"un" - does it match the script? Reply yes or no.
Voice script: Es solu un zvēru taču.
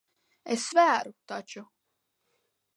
no